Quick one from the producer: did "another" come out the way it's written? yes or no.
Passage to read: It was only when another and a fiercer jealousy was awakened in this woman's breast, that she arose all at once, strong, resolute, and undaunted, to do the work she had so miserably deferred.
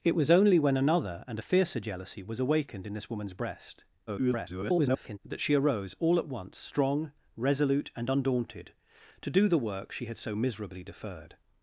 yes